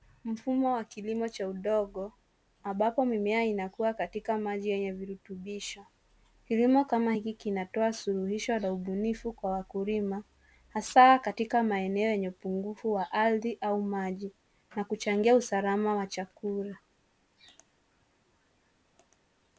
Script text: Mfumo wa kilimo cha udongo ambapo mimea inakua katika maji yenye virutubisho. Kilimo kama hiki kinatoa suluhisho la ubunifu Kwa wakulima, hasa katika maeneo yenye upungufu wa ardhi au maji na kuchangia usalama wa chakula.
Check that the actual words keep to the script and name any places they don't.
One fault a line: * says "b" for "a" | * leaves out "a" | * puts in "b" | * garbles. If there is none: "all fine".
all fine